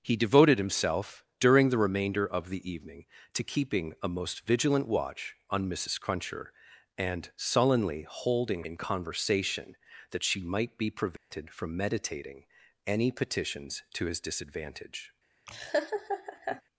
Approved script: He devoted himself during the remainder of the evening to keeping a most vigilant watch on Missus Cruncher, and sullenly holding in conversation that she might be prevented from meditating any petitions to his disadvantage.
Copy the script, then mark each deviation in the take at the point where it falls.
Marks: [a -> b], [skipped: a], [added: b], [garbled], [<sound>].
He devoted himself during the remainder of the evening to keeping a most vigilant watch on Missus Cruncher, and sullenly holding in conversation that she might be prevented [dropout] from meditating any petitions to his disadvantage. [laugh]